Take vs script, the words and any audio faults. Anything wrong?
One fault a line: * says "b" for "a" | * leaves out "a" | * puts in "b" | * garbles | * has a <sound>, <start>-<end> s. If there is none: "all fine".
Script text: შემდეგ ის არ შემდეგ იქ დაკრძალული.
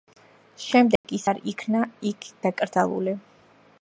* has a dropout, 1.0-1.0 s
* says "იქნა" for "შემდეგ"